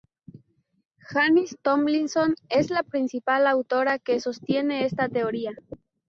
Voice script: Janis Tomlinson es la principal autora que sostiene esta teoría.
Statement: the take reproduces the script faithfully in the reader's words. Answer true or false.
true